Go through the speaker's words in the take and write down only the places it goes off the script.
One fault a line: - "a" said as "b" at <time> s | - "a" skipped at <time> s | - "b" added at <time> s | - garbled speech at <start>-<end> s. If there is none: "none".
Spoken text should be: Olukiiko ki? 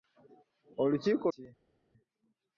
none